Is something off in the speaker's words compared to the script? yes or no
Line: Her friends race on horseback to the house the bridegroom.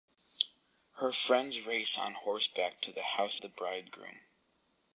no